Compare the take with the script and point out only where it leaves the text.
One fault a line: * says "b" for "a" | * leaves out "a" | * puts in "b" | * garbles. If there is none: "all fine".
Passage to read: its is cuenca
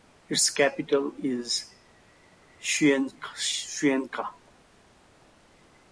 * puts in "capital"